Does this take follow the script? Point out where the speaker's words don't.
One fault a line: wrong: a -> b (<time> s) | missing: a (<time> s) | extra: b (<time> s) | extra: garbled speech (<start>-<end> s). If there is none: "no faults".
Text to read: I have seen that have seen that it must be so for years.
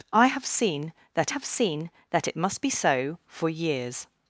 no faults